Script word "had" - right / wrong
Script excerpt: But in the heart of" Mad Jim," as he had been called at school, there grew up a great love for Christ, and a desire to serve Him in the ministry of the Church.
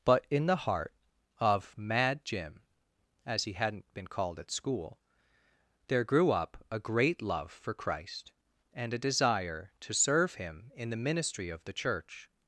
wrong